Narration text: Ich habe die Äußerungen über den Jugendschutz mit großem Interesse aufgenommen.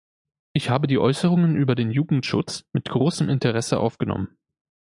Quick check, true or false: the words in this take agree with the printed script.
true